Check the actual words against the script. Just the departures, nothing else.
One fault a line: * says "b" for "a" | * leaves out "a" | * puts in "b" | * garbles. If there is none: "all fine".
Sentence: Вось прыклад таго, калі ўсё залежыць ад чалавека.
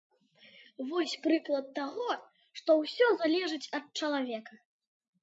* says "што" for "калі"